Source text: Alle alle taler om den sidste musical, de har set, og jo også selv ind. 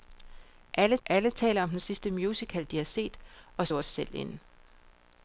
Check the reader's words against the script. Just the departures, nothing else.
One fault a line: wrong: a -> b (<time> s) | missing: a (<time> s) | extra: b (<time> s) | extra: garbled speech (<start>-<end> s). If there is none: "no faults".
no faults